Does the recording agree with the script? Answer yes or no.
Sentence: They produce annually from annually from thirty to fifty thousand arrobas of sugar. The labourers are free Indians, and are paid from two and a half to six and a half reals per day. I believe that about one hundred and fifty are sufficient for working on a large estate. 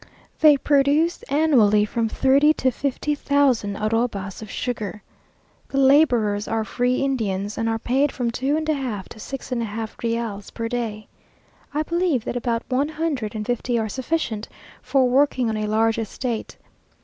no